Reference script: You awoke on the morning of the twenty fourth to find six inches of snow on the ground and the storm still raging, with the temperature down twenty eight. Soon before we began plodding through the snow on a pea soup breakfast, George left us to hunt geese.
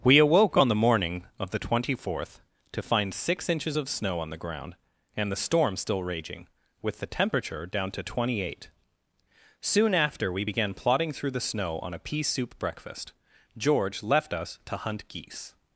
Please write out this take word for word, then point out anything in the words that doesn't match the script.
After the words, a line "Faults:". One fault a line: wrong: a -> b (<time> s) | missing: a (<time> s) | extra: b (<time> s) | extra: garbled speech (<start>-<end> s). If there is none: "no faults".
We awoke on the morning of the twenty fourth to find six inches of snow on the ground and the storm still raging, with the temperature down to twenty eight. Soon after we began plodding through the snow on a pea soup breakfast, George left us to hunt geese.
Faults:
wrong: You -> We (0.0 s)
extra: to (7.9 s)
wrong: before -> after (9.9 s)